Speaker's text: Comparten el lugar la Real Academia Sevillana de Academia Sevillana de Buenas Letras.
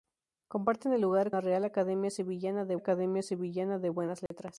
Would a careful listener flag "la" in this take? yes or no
no